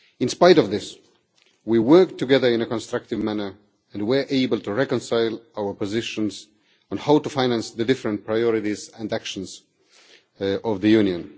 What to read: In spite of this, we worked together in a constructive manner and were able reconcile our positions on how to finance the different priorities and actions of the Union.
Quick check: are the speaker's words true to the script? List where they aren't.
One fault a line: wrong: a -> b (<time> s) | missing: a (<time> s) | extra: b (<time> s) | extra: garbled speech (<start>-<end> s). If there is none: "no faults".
extra: to (4.6 s)